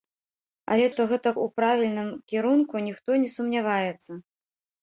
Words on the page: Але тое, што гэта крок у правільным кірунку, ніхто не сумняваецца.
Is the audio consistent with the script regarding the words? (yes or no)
no